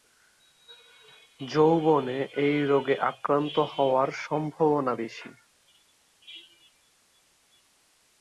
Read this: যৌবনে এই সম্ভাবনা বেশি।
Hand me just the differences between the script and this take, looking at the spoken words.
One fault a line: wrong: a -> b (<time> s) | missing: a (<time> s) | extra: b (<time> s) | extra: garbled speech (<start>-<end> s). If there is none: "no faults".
extra: রোগে আক্রান্ত হওয়ার (2.6 s)